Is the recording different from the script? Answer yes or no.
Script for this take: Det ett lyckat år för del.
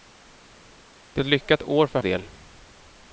no